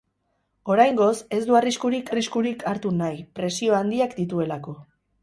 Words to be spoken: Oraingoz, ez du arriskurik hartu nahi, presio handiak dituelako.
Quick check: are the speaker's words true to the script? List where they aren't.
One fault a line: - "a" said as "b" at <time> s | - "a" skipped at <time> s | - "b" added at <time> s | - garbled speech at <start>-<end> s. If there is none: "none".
- "arriskurik" added at 2.1 s